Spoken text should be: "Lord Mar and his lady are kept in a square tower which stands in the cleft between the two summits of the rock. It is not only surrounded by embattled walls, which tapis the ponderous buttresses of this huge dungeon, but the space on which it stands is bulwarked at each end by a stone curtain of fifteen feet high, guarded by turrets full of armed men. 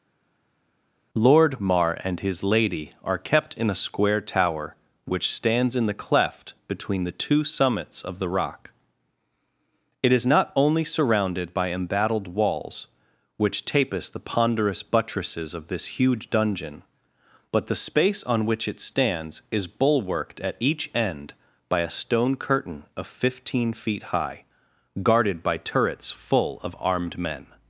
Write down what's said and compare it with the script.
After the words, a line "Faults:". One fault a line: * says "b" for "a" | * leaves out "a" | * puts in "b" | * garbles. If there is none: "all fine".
"Lord Mar and his lady are kept in a square tower which stands in the cleft between the two summits of the rock. It is not only surrounded by embattled walls, which tapis the ponderous buttresses of this huge dungeon, but the space on which it stands is bulwarked at each end by a stone curtain of fifteen feet high, guarded by turrets full of armed men.
Faults:
all fine